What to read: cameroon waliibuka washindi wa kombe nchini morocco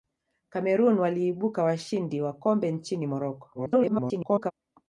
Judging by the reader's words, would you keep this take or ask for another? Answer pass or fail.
fail